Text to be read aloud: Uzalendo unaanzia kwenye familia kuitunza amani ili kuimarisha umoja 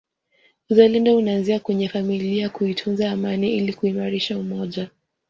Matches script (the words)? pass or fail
pass